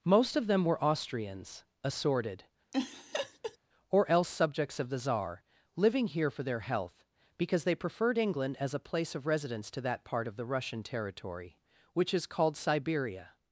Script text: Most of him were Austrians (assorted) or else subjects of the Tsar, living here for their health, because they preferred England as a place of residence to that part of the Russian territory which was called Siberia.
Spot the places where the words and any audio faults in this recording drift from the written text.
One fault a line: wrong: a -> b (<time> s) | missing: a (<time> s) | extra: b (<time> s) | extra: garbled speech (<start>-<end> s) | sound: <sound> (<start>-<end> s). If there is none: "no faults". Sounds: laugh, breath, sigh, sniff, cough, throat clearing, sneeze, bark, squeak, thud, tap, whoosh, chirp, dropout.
wrong: him -> them (0.5 s)
sound: laugh (2.7-3.6 s)
wrong: was -> is (12.1 s)